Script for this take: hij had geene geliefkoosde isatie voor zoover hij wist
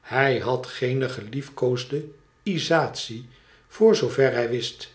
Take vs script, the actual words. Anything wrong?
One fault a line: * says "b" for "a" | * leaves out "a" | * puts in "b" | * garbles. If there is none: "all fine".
all fine